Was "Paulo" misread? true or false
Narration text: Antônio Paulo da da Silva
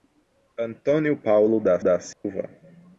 false